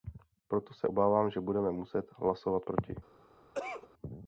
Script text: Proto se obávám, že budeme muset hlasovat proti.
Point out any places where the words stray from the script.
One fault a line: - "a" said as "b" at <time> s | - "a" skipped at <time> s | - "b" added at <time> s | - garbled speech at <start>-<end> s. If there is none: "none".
none